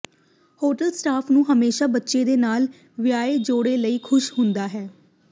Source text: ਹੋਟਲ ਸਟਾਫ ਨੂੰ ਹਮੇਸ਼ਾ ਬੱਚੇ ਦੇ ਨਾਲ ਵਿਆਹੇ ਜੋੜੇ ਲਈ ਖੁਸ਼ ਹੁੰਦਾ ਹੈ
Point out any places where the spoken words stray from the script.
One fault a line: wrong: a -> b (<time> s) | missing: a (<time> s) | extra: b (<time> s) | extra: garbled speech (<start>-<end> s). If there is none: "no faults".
no faults